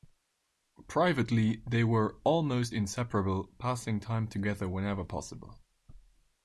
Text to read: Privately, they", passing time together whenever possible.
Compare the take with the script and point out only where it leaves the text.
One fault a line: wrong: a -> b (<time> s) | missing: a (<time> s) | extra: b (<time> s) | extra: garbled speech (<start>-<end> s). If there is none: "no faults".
extra: were almost inseparable (1.8 s)